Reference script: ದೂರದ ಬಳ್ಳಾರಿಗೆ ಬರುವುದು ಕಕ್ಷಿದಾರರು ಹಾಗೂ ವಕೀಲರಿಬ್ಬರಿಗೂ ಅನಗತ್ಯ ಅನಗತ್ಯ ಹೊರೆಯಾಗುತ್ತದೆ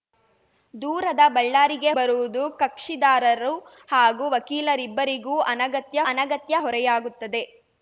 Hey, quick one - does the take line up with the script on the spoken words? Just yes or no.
yes